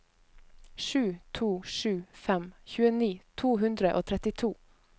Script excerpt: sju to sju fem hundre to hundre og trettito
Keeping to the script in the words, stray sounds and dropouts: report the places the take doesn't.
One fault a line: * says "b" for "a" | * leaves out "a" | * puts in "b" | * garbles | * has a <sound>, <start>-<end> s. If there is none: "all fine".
* says "tjueni" for "hundre"